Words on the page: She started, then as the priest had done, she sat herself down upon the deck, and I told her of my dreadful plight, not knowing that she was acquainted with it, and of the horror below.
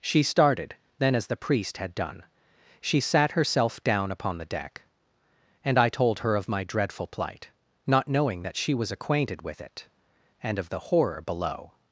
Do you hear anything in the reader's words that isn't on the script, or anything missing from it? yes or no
no